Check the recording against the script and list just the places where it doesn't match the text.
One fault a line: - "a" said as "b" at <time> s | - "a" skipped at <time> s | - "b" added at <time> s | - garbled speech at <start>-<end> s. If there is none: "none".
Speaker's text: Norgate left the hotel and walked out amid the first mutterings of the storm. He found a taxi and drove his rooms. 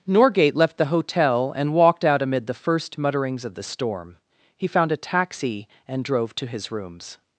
- "to" added at 6.4 s